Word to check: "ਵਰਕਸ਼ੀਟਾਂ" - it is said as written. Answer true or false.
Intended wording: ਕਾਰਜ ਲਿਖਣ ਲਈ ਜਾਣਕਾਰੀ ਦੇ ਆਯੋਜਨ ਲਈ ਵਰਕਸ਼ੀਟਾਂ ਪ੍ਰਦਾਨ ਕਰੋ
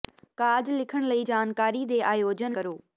false